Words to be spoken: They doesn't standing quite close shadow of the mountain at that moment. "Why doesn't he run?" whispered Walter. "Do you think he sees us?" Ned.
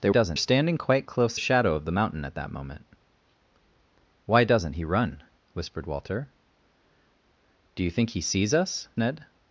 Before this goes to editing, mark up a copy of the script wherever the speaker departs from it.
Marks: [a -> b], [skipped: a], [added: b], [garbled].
They doesn't standing quite close shadow of the mountain at that moment. "Why doesn't he run?" whispered Walter. "Do you think he sees us?" Ned.